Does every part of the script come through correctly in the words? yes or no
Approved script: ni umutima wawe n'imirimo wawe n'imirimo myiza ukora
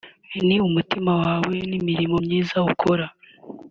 no